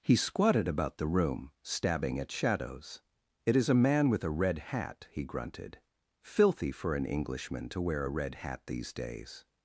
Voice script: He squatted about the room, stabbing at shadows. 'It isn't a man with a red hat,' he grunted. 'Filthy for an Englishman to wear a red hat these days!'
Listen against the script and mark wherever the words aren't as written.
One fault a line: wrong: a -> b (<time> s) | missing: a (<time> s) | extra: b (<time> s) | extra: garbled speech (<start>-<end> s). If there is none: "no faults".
wrong: isn't -> is (3.5 s)